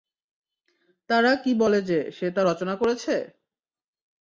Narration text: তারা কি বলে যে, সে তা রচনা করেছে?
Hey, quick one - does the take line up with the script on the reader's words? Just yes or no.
yes